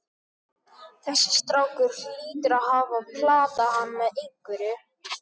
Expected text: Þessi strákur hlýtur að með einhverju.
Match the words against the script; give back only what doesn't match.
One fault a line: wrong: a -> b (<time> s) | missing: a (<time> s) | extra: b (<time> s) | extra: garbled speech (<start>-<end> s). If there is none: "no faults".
extra: hafa platað hann (2.7 s)